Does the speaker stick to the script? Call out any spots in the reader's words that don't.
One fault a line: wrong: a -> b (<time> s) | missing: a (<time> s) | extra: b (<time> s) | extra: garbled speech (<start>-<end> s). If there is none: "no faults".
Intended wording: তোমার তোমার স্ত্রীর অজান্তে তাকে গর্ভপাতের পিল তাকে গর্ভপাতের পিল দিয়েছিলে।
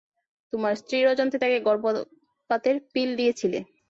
missing: তোমার (0.7 s)
missing: তাকে গর্ভপাতের পিল (3.1 s)